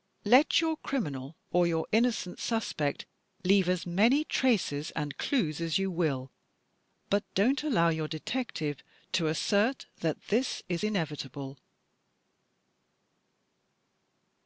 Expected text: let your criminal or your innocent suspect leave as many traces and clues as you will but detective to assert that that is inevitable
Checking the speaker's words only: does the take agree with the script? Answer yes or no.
no